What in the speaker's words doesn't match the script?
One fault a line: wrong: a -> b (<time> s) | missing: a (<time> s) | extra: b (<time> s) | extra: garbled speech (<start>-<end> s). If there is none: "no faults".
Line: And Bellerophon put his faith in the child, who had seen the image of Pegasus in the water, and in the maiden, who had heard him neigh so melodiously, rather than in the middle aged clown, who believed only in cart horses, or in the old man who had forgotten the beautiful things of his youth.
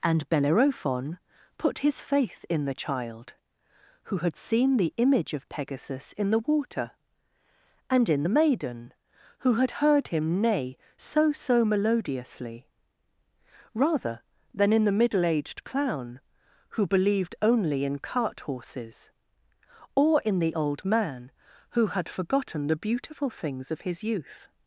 extra: so (11.3 s)